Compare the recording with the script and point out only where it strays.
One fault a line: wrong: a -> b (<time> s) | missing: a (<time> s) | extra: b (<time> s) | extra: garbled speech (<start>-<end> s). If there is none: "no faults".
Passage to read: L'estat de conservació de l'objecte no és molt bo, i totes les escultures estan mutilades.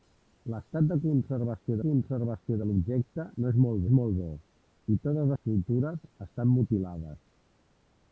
extra: conservació (1.8 s)
extra: és molt (3.8 s)
missing: les (5.3 s)